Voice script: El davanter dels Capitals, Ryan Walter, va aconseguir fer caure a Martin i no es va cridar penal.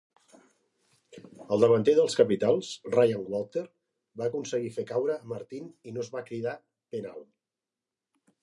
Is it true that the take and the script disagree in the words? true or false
false